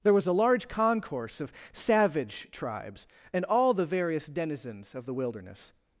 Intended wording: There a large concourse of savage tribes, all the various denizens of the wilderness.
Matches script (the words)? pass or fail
fail